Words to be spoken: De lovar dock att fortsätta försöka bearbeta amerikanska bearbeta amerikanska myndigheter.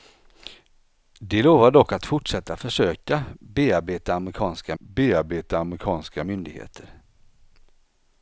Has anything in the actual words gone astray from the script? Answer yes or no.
no